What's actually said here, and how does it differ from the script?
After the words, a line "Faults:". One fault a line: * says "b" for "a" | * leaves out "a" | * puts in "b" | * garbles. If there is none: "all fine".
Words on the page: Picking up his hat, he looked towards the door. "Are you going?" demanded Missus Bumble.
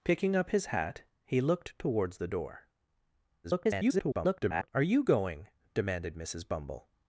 Picking up his hat, he looked towards the door. [garbled] "Are you going?" demanded Missus Bumble.
Faults:
* garbles